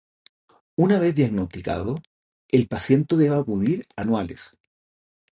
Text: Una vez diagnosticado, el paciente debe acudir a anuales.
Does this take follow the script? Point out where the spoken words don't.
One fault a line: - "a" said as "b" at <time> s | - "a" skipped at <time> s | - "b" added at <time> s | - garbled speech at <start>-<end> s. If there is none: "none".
none